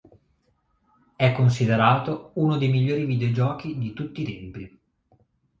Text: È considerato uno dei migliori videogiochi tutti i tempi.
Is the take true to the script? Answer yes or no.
no